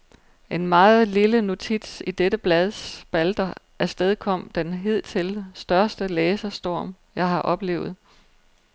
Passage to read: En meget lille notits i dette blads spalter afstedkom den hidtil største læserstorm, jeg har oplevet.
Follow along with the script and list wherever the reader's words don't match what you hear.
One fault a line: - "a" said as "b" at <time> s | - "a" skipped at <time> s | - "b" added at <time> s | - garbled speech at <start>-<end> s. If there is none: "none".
none